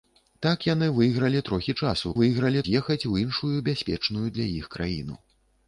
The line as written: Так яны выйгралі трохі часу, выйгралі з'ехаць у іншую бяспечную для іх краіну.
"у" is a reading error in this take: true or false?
false